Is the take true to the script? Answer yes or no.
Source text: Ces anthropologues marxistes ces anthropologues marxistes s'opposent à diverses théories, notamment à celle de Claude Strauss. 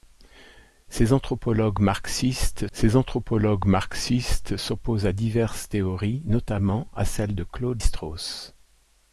yes